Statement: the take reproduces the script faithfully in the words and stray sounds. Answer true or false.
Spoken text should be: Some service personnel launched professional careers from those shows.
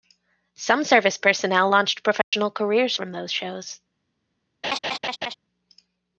false